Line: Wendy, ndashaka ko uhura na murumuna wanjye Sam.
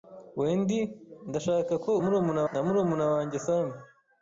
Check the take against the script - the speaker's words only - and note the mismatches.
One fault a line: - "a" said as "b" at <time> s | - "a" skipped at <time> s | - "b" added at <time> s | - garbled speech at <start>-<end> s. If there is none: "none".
- "uhura" said as "murumuna" at 2.0 s